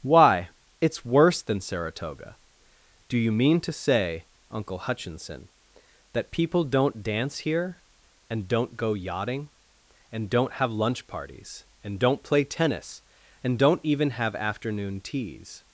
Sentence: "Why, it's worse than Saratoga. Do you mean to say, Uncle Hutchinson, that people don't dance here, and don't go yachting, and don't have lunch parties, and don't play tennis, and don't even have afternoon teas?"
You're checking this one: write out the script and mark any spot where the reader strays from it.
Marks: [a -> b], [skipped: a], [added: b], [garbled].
"Why, it's worse than Saratoga. Do you mean to say, Uncle Hutchinson, that people don't dance here, and don't go yachting, and don't have lunch parties, and don't play tennis, and don't even have afternoon teas?"